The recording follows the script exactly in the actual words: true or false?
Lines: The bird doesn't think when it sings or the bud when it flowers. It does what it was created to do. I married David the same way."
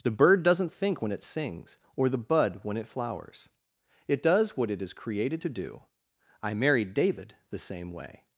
false